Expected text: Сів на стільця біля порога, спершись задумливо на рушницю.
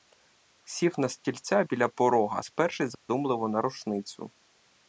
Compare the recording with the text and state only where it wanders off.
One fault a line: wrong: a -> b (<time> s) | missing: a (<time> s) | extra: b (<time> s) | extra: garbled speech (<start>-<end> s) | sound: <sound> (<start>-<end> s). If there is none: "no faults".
sound: dropout (2.9-3.1 s)